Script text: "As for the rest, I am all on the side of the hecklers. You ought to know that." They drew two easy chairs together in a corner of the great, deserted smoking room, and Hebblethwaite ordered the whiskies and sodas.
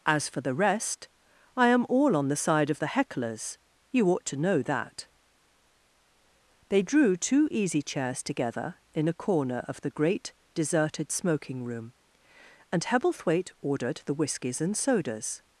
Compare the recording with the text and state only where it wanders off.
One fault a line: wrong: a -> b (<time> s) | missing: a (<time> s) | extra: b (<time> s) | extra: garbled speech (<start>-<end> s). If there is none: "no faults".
no faults